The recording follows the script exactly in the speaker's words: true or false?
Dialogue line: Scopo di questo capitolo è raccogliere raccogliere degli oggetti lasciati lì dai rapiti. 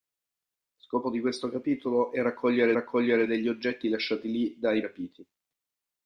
true